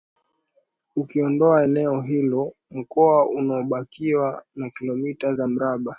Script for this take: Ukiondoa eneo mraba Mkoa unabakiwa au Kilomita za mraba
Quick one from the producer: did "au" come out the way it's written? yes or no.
no